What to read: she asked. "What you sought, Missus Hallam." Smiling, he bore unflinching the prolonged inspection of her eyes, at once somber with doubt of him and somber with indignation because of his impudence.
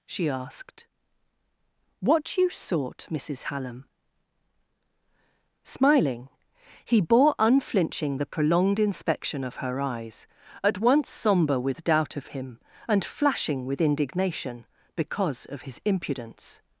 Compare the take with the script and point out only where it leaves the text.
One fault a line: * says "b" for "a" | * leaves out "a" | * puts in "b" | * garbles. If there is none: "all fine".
* says "flashing" for "somber"